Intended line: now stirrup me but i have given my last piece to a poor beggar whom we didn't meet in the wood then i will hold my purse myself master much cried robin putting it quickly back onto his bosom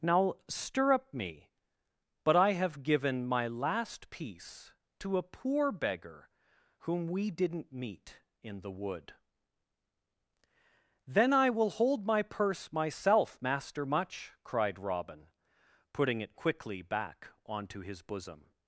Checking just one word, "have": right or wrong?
right